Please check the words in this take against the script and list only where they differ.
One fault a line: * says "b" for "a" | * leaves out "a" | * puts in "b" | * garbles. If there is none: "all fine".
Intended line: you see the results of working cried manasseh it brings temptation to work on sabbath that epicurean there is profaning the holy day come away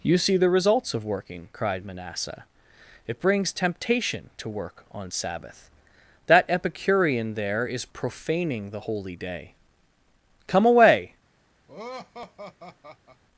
all fine